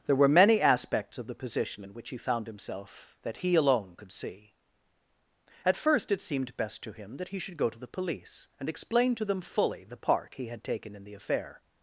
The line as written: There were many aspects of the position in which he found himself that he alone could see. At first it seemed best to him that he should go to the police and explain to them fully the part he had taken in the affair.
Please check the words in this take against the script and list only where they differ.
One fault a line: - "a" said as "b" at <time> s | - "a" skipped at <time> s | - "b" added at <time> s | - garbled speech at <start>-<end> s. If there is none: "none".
none